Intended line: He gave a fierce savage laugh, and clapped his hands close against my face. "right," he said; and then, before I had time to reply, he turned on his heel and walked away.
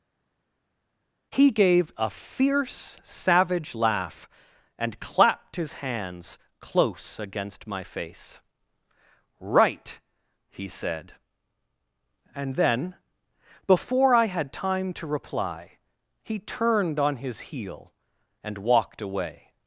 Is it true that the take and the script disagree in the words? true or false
false